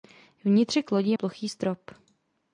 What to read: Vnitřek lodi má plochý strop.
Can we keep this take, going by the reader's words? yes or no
no